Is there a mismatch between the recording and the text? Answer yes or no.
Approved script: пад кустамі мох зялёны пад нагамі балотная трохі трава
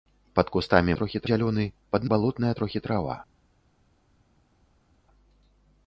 yes